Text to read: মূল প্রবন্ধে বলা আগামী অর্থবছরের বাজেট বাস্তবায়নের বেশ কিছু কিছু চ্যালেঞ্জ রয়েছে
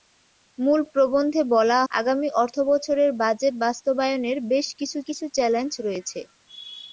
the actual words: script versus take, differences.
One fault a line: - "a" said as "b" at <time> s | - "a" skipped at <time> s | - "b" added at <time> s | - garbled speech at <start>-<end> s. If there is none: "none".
none